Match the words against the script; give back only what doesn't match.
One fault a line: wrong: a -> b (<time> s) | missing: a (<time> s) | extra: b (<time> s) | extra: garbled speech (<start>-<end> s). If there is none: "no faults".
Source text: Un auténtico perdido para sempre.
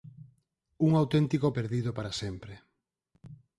no faults